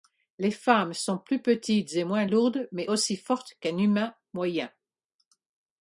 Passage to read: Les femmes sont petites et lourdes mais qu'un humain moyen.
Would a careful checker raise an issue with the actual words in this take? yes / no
yes